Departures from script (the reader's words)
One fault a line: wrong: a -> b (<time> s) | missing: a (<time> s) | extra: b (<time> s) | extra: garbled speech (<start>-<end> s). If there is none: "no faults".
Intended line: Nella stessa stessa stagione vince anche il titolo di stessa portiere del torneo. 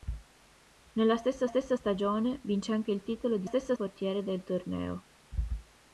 no faults